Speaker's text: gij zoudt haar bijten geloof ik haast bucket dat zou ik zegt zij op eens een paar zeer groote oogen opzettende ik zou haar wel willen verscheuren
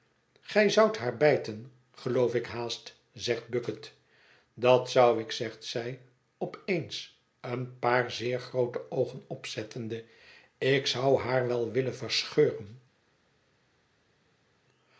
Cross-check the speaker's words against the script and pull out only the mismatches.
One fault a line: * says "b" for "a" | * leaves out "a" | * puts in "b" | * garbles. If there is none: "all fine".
* puts in "zegt"